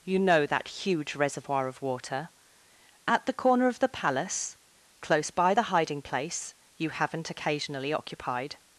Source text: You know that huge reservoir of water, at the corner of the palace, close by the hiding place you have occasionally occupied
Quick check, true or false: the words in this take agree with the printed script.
false